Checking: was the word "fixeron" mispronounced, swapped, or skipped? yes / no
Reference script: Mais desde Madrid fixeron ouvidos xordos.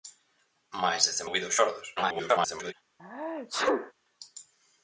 yes